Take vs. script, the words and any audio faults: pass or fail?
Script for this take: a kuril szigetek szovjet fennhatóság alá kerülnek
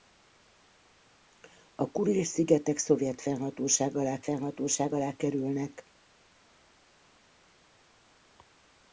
fail